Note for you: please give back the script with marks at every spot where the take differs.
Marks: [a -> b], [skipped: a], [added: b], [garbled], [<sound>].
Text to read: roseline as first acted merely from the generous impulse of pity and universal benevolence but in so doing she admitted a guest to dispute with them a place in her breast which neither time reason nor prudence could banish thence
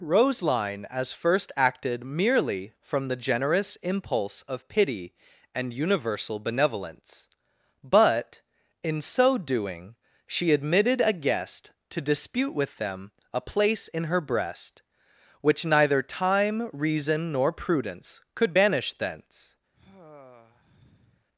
roseline as first acted merely from the generous impulse of pity and universal benevolence but in so doing she admitted a guest to dispute with them a place in her breast which neither time reason nor prudence could banish thence [sigh]